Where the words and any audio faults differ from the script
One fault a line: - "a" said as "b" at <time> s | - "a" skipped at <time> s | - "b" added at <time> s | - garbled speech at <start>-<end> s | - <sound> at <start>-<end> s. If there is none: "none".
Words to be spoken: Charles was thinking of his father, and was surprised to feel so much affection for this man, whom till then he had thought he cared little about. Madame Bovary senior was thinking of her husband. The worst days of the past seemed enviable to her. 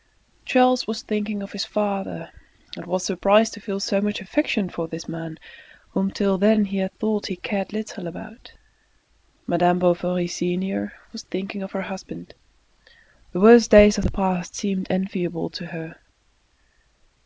none